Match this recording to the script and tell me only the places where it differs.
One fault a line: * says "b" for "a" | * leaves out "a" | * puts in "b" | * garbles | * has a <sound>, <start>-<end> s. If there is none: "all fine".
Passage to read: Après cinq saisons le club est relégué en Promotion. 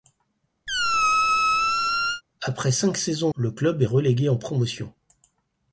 * has a squeak, 0.7-2.2 s